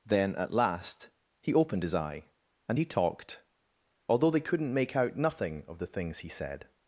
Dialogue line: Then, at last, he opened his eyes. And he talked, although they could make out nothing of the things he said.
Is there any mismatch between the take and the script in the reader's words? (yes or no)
yes